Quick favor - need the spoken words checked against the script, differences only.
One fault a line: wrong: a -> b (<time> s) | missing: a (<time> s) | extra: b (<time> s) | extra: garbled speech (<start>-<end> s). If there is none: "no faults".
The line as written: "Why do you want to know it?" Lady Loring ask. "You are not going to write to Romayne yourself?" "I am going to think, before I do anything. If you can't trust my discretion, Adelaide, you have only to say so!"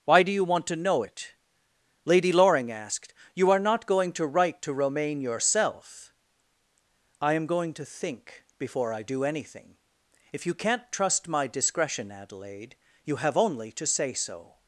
wrong: ask -> asked (2.7 s)